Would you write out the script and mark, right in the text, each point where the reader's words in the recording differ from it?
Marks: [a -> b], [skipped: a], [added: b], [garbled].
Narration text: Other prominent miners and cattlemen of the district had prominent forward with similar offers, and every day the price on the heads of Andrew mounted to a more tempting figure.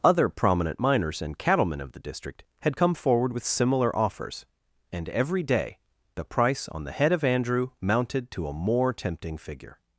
Other prominent miners and cattlemen of the district had [prominent -> come] forward with similar offers, and every day the price on the [heads -> head] of Andrew mounted to a more tempting figure.